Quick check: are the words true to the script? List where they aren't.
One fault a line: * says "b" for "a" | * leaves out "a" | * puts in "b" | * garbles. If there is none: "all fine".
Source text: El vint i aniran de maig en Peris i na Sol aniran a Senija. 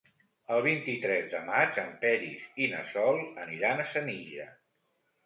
* says "tres" for "aniran"